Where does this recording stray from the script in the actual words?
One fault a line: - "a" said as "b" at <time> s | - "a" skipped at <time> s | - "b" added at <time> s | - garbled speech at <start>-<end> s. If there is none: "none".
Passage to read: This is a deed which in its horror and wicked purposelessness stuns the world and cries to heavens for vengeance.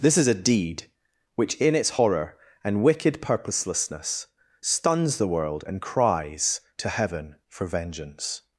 - "heavens" said as "heaven" at 6.9 s